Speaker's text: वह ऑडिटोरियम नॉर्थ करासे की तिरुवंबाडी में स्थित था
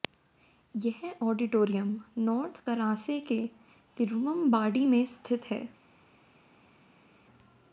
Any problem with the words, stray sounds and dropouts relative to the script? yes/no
yes